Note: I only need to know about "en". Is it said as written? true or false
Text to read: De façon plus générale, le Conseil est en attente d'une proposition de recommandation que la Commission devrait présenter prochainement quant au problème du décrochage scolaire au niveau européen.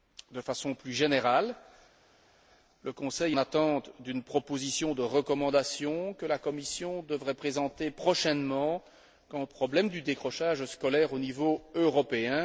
false